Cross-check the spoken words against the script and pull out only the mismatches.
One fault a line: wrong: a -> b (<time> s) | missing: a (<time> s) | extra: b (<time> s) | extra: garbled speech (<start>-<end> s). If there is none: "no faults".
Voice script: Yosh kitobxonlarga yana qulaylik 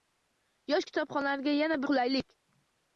no faults